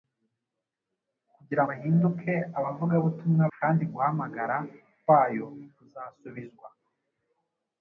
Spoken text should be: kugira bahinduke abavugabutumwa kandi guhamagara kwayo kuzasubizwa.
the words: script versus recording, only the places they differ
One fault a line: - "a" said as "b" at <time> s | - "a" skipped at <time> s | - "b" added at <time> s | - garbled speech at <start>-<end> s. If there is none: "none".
none